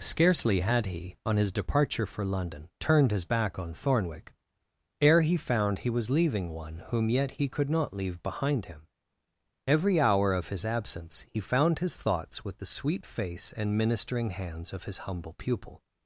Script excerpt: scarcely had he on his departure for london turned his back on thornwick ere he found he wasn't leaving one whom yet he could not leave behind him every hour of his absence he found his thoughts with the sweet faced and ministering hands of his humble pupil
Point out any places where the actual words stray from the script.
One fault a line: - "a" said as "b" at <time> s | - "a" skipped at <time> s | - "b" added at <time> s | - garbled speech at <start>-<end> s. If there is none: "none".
- "wasn't" said as "was" at 5.9 s
- "faced" said as "face" at 13.1 s